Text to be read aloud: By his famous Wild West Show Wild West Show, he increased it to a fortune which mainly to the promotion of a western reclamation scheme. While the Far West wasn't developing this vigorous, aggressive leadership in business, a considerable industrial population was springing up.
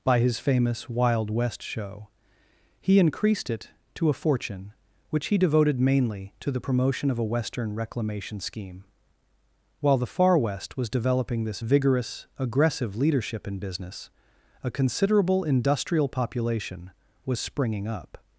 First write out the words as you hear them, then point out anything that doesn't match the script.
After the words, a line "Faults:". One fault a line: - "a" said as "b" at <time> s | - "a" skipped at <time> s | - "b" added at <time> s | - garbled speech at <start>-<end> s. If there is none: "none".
By his famous Wild West Show, he increased it to a fortune which he devoted mainly to the promotion of a western reclamation scheme. While the Far West was developing this vigorous, aggressive leadership in business, a considerable industrial population was springing up.
Faults:
- "Wild West Show" skipped at 2.1 s
- "he devoted" added at 5.3 s
- "wasn't" said as "was" at 10.8 s